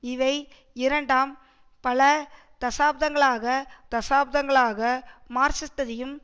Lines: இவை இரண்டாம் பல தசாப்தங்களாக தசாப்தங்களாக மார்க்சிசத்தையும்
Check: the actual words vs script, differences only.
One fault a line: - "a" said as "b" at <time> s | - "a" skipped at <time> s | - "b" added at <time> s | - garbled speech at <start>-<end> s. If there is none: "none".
none